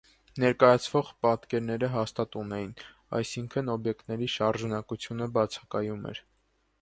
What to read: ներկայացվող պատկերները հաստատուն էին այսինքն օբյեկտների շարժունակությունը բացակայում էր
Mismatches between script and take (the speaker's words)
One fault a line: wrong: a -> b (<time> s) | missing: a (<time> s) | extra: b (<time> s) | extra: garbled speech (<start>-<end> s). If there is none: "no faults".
no faults